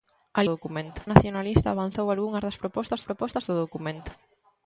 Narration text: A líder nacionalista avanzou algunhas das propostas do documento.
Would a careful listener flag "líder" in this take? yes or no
yes